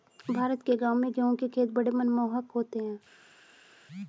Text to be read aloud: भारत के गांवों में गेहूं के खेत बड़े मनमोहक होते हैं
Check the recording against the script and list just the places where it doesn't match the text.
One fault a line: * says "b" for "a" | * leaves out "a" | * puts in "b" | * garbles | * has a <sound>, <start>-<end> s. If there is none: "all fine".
all fine